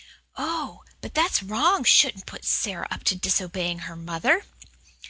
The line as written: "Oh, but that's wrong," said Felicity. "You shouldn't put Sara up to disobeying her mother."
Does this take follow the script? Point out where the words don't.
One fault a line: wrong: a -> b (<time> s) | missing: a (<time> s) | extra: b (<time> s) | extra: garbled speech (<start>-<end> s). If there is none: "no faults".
missing: said Felicity You (1.8 s)